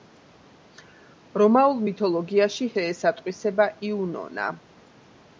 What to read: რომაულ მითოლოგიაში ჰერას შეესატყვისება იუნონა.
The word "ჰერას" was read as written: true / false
false